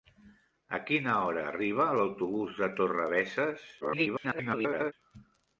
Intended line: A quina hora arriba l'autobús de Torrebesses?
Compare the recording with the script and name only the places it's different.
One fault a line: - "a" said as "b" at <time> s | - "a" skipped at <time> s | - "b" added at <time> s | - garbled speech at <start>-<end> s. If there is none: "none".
- garbled speech at 3.8-4.9 s